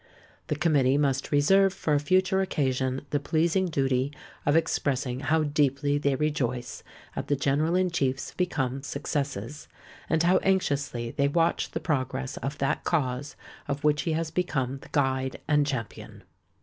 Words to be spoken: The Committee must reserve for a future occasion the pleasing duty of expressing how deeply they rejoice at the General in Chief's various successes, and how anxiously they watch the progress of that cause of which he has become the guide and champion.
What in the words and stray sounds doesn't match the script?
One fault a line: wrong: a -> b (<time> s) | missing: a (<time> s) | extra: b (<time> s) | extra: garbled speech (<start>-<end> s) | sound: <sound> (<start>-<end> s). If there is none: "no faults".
wrong: various -> become (8.3 s)